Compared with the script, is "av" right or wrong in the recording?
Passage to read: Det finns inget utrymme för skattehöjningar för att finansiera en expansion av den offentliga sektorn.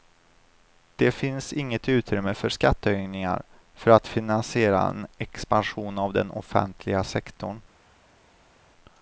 right